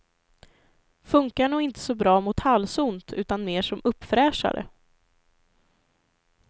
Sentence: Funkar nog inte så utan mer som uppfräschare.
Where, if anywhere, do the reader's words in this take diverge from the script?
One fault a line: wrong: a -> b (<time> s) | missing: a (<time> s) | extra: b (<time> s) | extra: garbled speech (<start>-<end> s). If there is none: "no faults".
extra: bra mot halsont (1.9 s)